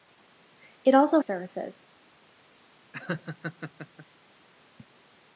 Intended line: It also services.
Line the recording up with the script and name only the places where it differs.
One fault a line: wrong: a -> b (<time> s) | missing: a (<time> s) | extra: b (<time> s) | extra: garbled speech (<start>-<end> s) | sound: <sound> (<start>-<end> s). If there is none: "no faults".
sound: laugh (2.9-4.1 s)